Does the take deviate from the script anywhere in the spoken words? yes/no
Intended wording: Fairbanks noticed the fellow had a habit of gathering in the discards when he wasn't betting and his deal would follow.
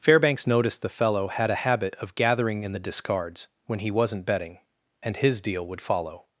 no